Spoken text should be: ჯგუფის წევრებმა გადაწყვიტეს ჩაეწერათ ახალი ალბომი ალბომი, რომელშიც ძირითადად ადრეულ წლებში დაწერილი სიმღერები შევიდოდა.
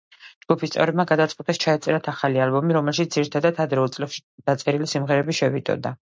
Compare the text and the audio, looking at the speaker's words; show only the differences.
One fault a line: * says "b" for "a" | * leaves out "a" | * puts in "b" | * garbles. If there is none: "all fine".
* leaves out "ალბომი"